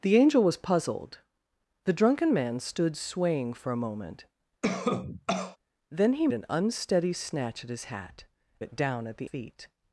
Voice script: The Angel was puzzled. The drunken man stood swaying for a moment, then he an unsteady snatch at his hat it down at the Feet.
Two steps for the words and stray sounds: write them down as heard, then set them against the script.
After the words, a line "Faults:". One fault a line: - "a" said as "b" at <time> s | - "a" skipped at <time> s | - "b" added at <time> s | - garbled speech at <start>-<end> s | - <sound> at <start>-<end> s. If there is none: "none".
The Angel was puzzled. The drunken man stood swaying for a moment, then he an unsteady snatch at his hat it down at the Feet.
Faults:
- cough at 4.6-5.6 s